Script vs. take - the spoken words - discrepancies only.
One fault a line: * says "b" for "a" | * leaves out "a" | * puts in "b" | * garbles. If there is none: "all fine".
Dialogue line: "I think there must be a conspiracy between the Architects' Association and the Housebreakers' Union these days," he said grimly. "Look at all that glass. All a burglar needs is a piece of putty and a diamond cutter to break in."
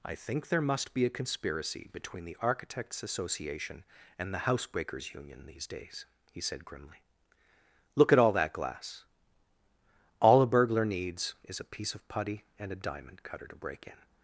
all fine